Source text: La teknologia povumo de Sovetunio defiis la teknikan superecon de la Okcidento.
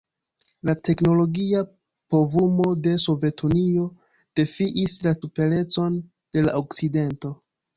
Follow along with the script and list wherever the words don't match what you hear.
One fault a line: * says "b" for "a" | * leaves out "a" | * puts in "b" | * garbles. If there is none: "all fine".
* leaves out "teknikan"